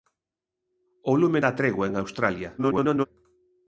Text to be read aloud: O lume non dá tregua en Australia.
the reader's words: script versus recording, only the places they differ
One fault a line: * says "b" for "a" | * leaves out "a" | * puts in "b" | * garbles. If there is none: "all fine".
* leaves out "non"
* garbles